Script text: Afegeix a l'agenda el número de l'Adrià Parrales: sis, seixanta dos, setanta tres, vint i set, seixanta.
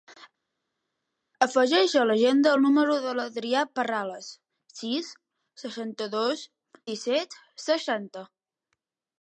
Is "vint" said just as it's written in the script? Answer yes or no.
no